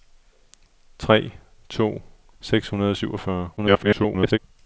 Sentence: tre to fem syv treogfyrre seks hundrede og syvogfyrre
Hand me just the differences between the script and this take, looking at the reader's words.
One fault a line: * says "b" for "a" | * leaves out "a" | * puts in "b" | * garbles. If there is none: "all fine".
* leaves out "fem syv treogfyrre"
* garbles